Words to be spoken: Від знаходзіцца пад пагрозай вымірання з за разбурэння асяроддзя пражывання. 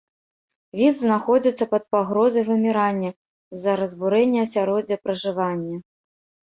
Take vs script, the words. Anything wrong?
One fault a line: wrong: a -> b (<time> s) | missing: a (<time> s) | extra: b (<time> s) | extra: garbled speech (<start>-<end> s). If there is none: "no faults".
no faults